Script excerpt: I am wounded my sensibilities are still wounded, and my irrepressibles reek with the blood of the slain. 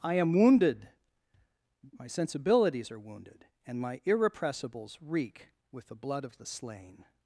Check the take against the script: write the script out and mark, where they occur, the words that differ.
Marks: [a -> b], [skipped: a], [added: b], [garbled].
I am wounded my sensibilities are [skipped: still] wounded, and my irrepressibles reek with the blood of the slain.